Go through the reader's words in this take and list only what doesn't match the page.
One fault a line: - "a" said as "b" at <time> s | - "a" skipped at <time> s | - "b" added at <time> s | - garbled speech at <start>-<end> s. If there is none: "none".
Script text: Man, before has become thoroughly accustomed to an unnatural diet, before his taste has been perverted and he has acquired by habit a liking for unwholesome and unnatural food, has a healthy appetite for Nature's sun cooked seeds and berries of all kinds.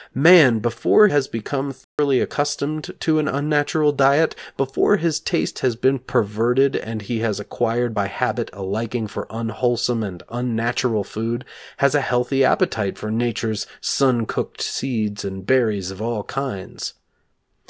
none